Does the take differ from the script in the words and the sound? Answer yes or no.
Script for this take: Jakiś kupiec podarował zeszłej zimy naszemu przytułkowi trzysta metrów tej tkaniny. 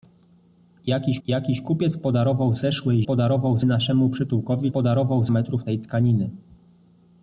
yes